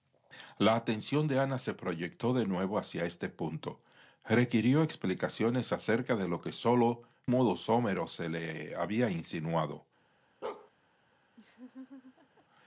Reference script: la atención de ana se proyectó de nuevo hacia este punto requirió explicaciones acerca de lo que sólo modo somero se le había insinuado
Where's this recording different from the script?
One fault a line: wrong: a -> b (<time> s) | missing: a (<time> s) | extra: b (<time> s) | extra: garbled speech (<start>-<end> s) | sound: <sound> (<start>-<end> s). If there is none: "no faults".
sound: bark (10.4-10.7 s)
sound: laugh (11.4-12.5 s)